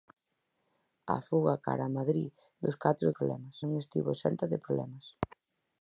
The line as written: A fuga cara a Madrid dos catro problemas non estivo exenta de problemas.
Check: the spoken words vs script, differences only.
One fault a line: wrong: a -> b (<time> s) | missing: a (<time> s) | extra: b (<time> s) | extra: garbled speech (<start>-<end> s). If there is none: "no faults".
no faults